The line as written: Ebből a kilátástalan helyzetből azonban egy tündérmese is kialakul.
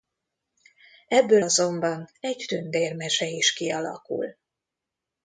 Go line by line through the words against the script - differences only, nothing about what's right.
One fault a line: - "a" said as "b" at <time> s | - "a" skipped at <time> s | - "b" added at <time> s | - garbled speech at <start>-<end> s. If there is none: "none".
- "a kilátástalan helyzetből" skipped at 1.4 s